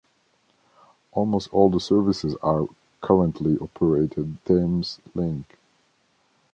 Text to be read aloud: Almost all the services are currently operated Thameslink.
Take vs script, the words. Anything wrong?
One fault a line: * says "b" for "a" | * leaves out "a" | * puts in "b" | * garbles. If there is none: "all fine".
all fine